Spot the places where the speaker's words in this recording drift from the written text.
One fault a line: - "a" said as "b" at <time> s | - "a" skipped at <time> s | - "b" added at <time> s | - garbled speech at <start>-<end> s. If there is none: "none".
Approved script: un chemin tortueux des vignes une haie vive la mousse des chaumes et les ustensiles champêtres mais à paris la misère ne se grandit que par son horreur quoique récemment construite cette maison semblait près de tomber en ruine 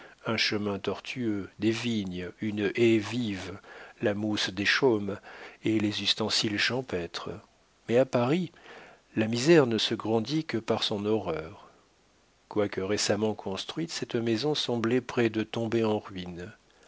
none